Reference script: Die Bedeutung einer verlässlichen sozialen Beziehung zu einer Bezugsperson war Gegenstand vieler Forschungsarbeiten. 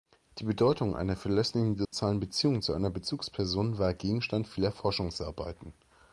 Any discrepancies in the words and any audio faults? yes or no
yes